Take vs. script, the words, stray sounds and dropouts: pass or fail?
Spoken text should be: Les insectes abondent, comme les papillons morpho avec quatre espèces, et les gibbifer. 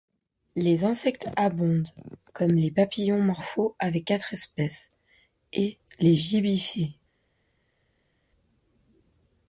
pass